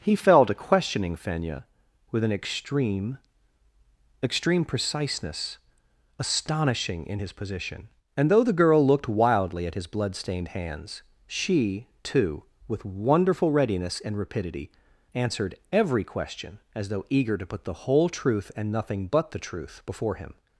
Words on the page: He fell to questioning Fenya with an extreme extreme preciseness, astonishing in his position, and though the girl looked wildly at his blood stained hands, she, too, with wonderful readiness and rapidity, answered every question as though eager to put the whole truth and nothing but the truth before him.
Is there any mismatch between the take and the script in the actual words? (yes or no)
no